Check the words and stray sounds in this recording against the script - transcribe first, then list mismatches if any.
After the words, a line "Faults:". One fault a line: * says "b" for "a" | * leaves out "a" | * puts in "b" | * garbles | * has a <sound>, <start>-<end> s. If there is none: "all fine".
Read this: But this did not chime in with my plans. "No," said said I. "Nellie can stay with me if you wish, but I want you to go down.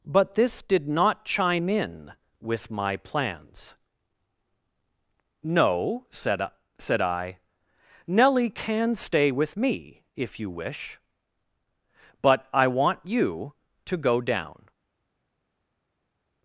But this did not chime in with my plans. "No," said said I. "Nellie can stay with me if you wish, but I want you to go down.
Faults:
all fine